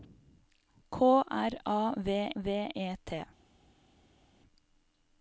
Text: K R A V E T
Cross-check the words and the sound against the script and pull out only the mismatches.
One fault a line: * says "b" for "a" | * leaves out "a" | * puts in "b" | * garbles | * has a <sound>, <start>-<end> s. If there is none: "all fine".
* puts in "V"